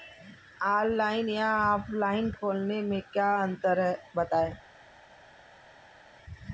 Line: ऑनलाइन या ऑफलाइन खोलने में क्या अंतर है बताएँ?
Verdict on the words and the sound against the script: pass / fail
pass